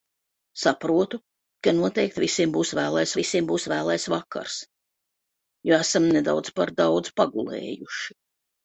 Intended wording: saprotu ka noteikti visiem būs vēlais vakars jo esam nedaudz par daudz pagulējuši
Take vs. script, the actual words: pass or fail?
fail